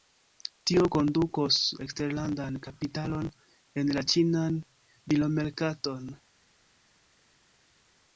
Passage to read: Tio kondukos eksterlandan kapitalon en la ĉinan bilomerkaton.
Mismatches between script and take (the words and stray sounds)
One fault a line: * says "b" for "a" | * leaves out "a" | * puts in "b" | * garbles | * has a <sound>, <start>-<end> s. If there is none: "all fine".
all fine